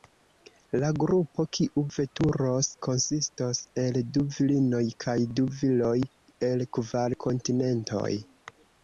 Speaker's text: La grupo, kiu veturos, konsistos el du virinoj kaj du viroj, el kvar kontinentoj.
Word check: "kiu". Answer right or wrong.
right